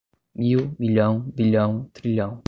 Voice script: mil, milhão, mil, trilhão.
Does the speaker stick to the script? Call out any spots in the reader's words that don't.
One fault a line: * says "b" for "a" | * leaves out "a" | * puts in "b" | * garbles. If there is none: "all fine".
* says "bilhão" for "mil"